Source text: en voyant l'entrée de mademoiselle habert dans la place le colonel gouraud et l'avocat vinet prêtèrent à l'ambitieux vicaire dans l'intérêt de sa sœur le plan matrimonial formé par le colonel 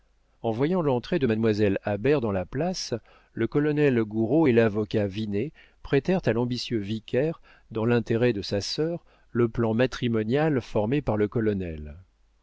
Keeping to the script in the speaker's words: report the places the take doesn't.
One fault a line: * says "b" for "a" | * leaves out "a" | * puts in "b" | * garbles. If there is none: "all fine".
all fine